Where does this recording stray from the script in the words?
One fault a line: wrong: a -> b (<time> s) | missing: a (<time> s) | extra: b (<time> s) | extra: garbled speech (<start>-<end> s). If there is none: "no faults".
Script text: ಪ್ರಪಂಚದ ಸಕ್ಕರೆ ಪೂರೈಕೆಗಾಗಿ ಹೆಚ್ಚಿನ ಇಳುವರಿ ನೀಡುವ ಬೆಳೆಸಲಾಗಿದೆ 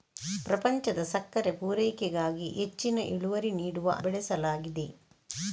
no faults